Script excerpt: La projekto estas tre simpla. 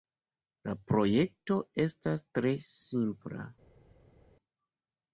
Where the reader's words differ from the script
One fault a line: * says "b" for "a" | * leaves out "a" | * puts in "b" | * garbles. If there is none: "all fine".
all fine